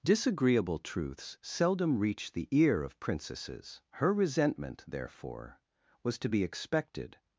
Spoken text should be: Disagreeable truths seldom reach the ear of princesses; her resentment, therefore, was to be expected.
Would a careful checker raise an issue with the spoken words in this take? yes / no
no